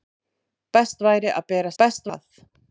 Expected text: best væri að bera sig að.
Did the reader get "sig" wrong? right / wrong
wrong